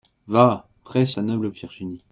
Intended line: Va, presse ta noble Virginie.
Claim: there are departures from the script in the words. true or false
false